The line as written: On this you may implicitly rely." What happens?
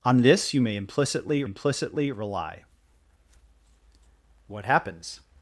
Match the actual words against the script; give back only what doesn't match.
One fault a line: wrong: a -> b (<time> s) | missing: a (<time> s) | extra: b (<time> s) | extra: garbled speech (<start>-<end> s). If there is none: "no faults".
extra: implicitly (1.4 s)